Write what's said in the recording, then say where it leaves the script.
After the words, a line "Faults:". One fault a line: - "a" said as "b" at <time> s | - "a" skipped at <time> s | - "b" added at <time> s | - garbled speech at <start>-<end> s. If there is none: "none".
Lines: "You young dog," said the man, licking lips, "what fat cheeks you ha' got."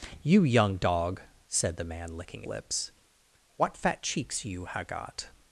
"You young dog," said the man, licking lips, "what fat cheeks you ha' got."
Faults:
none